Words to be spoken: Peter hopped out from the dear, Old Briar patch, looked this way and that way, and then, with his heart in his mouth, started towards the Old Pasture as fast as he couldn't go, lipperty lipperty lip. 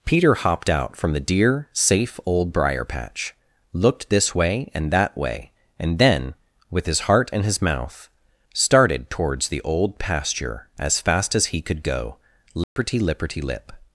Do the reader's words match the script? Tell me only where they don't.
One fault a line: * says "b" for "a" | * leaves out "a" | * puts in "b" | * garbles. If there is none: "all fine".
* puts in "safe"
* says "could" for "couldn't"